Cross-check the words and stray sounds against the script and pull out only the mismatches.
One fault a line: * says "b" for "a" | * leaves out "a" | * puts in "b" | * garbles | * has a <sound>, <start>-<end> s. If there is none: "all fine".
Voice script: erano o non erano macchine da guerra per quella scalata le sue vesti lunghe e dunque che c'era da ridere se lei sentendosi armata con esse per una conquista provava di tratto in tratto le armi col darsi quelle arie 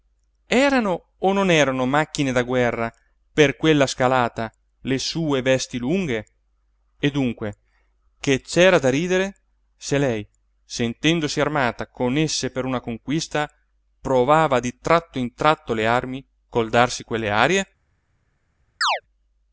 * has a chirp, 18.8-19.0 s